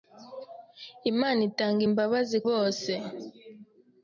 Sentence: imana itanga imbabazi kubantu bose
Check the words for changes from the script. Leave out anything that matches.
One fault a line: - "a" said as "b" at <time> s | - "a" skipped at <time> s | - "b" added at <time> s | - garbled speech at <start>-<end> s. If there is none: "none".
- "kubantu" skipped at 2.4 s